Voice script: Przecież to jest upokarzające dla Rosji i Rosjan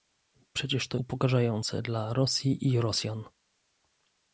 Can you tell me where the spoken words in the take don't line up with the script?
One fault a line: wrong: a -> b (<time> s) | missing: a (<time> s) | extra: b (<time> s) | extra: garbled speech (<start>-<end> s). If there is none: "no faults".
missing: jest (1.0 s)